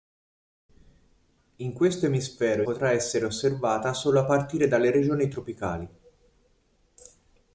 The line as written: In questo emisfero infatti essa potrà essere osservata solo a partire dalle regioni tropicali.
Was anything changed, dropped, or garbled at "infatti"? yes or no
yes